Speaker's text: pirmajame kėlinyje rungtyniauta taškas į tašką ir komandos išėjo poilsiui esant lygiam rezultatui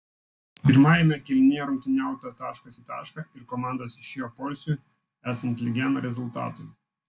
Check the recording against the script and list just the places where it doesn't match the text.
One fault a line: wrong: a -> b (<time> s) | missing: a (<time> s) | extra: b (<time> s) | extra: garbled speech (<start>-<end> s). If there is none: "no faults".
no faults